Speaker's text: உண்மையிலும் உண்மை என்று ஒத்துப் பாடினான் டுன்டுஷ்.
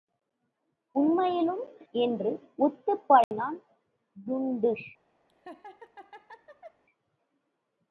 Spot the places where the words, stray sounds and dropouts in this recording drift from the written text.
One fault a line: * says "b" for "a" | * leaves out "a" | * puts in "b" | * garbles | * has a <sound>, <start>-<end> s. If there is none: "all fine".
* leaves out "உண்மை"
* has a dropout, 3.2-3.3 s
* has a laugh, 5.3-6.8 s